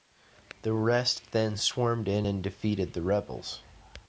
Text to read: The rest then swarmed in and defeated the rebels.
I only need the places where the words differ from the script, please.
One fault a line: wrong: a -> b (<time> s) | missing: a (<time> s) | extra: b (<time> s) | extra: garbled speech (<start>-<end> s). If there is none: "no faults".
no faults